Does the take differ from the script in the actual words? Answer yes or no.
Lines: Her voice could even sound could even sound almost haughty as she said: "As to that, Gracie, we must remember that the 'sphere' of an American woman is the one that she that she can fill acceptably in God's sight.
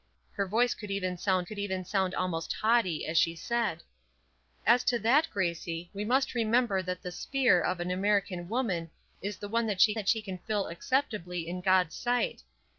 no